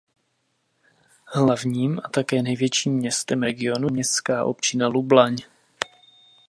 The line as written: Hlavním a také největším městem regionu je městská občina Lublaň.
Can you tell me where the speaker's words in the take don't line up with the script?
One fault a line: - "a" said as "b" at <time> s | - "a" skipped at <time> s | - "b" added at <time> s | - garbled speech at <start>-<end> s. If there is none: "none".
- "je" skipped at 3.9 s